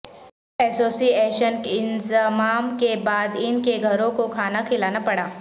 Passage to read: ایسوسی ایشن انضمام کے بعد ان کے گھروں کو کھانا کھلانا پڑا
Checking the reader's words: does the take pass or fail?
pass